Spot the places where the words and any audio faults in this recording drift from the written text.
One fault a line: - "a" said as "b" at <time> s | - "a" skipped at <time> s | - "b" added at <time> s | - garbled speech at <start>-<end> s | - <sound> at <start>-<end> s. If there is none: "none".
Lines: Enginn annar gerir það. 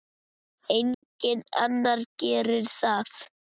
- dropout at 0.9-1.0 s